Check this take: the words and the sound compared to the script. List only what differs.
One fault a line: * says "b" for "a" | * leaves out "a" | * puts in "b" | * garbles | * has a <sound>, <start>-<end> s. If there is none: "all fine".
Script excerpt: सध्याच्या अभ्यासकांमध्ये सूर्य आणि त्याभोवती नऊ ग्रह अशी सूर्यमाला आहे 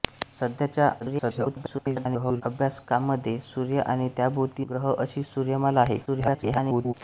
* garbles
* leaves out "नऊ"
* garbles